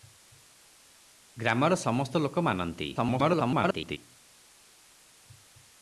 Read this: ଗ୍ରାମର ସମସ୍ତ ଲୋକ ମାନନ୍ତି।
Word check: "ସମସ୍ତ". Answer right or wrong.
right